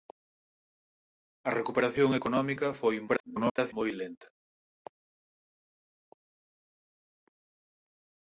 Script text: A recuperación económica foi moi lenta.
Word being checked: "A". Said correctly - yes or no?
yes